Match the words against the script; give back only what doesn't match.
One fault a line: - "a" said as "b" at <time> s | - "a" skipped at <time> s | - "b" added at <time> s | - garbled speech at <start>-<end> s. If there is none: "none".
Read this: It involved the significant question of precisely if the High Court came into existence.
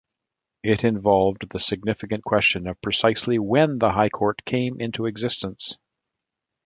- "if" said as "when" at 3.4 s